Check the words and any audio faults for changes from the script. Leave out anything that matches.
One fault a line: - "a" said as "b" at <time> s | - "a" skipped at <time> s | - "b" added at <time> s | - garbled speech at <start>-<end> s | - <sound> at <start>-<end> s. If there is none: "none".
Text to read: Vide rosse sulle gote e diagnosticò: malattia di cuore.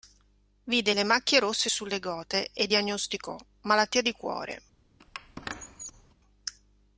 - "le macchie" added at 0.9 s
- squeak at 5.0-6.1 s